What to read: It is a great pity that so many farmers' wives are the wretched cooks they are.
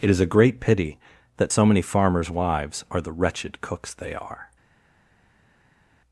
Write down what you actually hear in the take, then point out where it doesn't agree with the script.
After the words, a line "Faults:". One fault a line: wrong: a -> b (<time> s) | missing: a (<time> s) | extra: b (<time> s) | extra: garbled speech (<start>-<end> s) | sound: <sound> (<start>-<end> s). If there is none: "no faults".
It is a great pity that so many farmers' wives are the wretched cooks they are.
Faults:
no faults